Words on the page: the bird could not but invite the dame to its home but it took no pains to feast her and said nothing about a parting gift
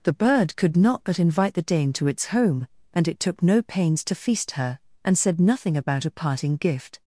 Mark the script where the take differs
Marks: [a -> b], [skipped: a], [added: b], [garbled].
the bird could not but invite the dame to its home [but -> and] it took no pains to feast her and said nothing about a parting gift